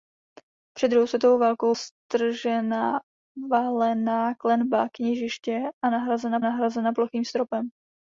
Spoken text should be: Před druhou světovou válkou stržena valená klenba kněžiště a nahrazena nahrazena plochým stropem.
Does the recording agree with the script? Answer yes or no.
yes